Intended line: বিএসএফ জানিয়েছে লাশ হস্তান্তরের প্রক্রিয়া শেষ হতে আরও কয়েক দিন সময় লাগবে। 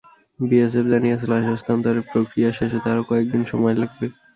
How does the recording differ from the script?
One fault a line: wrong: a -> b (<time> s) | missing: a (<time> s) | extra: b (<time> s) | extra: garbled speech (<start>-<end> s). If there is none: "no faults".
no faults